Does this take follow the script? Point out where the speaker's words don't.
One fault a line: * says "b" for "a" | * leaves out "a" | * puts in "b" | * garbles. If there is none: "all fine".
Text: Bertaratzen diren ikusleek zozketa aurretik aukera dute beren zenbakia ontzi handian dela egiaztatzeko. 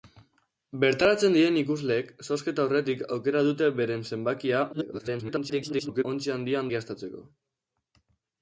* garbles
* leaves out "dela"